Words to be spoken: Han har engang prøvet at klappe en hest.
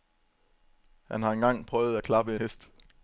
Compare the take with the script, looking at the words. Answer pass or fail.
fail